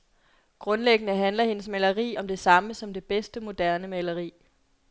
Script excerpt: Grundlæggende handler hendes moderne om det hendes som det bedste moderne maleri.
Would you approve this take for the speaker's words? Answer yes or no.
no